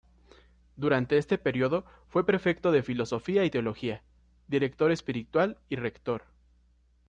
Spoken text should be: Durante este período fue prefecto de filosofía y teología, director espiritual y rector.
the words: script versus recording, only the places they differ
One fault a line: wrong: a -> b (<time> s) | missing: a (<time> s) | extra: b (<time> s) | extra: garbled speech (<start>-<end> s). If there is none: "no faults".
no faults